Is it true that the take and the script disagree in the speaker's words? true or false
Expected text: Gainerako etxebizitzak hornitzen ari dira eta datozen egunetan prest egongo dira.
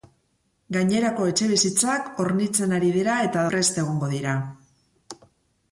true